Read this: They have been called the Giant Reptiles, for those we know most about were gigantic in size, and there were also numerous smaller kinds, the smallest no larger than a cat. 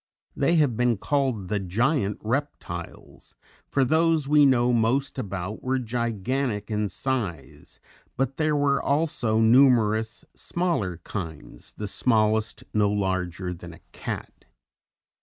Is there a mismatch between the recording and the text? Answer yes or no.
yes